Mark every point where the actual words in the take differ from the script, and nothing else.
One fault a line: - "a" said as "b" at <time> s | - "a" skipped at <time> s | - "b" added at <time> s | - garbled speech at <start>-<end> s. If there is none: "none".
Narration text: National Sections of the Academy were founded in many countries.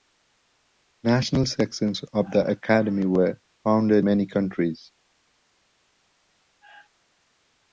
- "in" skipped at 4.0 s